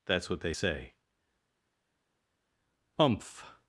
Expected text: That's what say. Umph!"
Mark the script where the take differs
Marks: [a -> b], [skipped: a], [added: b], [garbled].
That's what [added: they] say. Umph!"